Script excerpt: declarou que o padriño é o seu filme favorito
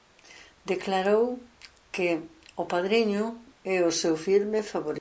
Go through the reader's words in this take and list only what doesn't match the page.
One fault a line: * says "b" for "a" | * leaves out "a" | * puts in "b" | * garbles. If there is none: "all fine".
all fine